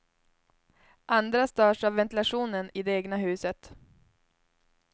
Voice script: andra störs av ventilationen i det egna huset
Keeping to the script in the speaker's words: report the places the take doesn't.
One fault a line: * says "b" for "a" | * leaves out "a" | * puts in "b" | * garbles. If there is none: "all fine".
all fine